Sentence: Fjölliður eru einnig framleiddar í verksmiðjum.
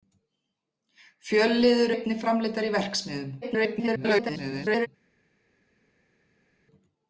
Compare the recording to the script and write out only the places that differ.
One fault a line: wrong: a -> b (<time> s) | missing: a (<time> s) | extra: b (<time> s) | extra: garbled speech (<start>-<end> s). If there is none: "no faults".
missing: eru (1.9 s)
extra: garbled speech (3.4-4.9 s)